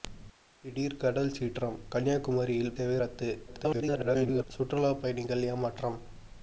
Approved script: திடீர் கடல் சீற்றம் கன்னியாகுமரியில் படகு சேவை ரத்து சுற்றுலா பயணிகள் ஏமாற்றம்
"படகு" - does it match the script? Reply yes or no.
no